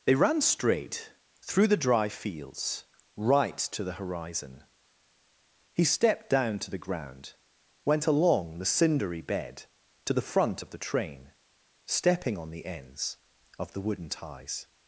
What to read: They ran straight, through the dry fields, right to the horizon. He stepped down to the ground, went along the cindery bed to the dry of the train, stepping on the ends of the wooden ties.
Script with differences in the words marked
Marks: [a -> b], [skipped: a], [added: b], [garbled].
They ran straight, through the dry fields, right to the horizon. He stepped down to the ground, went along the cindery bed to the [dry -> front] of the train, stepping on the ends of the wooden ties.